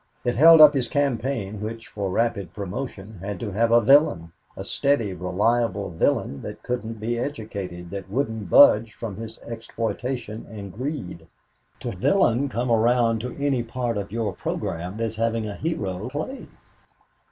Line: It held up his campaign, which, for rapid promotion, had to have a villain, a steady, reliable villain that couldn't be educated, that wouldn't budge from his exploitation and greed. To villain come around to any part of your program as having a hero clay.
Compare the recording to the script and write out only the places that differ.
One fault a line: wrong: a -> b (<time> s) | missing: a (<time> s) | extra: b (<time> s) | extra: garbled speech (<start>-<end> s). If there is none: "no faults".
no faults